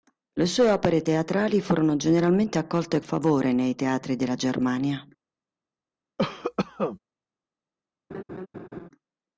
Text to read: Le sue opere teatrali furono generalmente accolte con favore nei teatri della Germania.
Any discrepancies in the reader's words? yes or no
yes